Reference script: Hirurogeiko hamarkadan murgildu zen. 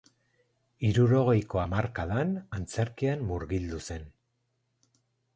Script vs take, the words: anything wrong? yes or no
yes